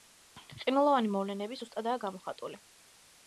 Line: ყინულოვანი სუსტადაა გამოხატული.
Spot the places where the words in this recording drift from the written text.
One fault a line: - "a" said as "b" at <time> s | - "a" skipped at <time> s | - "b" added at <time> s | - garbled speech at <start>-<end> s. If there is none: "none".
- "მოვლენები" added at 1.2 s